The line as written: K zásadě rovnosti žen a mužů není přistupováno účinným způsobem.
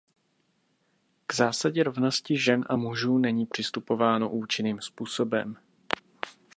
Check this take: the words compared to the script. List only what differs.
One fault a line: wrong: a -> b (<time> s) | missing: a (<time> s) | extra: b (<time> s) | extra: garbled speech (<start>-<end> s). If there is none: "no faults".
no faults